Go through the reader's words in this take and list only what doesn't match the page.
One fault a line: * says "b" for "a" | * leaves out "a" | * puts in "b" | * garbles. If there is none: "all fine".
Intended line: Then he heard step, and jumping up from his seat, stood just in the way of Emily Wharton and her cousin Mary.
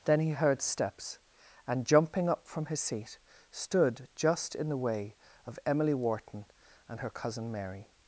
* says "steps" for "step"